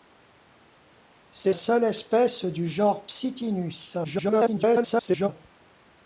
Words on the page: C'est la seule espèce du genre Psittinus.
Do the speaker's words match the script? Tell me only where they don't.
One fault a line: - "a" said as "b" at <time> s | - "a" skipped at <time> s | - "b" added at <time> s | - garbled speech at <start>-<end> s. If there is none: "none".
- "la" skipped at 1.5 s
- garbled speech at 4.0-5.3 s